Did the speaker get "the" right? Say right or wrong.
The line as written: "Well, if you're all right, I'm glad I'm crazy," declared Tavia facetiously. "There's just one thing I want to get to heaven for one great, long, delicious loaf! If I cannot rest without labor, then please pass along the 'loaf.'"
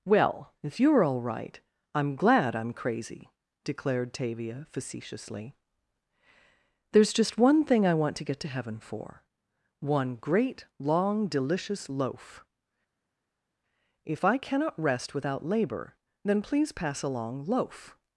wrong